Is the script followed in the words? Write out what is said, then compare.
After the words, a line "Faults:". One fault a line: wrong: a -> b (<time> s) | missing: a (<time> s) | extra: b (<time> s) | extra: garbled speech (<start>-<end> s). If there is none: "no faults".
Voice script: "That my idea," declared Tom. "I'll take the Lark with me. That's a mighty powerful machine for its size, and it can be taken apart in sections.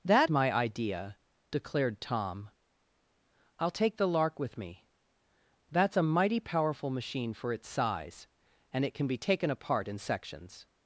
"That my idea," declared Tom. "I'll take the Lark with me. That's a mighty powerful machine for its size, and it can be taken apart in sections.
Faults:
no faults